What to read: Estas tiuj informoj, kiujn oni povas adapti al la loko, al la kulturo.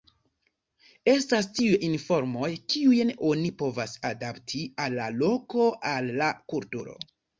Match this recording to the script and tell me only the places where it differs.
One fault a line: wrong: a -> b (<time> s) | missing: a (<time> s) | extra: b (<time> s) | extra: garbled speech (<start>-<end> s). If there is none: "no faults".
no faults